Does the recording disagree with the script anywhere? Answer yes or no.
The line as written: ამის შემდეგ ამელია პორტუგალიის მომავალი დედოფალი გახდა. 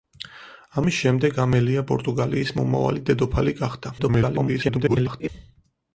yes